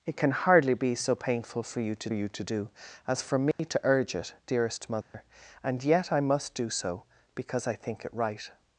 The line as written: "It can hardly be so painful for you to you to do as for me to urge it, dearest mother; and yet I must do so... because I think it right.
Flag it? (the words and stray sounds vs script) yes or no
yes